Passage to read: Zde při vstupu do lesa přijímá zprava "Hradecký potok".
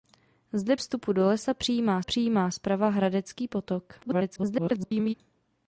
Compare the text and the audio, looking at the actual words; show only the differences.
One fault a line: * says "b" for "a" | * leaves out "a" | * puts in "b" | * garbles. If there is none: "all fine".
* leaves out "při"
* puts in "přijímá"
* garbles